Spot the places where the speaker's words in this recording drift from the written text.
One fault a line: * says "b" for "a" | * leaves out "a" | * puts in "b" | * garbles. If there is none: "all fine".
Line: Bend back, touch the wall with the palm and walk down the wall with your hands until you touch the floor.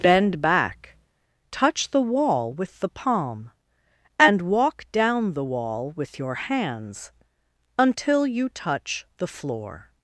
all fine